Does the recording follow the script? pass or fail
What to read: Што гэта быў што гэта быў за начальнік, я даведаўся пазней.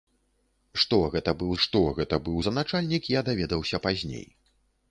pass